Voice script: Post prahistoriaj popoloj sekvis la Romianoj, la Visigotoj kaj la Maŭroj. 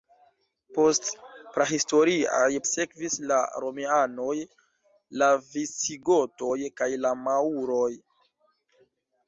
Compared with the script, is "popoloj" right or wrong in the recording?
wrong